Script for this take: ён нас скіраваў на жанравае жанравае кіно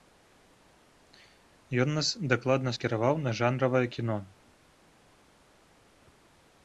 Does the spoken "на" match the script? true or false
true